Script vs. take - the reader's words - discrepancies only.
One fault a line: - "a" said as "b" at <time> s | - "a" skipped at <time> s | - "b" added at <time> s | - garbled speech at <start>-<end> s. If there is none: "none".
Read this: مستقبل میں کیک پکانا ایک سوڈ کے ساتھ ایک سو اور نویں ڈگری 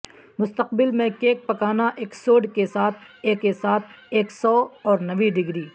- "کے ساتھ ایک" added at 3.4 s